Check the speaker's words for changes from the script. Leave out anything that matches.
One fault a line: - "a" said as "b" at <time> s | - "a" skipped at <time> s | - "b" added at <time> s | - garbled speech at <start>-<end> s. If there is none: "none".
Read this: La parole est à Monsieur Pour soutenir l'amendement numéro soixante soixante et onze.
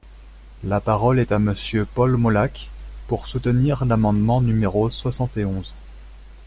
- "Paul Molac" added at 1.9 s
- "soixante" skipped at 5.4 s